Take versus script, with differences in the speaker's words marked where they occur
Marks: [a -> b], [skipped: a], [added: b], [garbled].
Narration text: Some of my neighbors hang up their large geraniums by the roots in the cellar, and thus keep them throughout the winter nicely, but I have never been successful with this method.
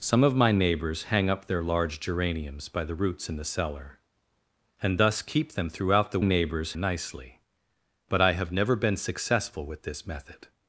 Some of my neighbors hang up their large geraniums by the roots in the cellar, and thus keep them throughout the [winter -> neighbors] nicely, but I have never been successful with this method.